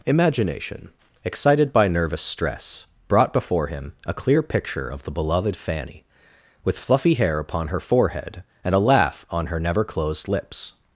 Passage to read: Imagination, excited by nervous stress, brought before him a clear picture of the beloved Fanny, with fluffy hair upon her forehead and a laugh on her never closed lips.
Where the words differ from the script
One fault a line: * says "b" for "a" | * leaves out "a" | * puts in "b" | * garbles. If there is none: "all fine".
all fine